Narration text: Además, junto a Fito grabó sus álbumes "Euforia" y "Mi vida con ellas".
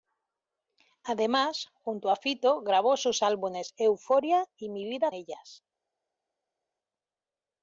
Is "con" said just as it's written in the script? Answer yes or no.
no